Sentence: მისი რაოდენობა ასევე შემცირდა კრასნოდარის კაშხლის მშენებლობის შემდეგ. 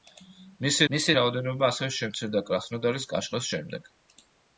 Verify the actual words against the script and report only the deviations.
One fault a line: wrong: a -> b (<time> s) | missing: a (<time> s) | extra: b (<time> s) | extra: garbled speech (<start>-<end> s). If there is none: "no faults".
extra: მისი (0.9 s)
missing: მშენებლობის (3.5 s)